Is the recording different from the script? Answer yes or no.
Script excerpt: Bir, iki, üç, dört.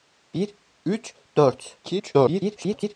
yes